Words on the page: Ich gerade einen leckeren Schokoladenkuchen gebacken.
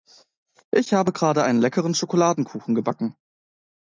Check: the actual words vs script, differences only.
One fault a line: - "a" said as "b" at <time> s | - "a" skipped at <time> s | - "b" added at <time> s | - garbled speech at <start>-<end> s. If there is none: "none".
- "habe" added at 0.9 s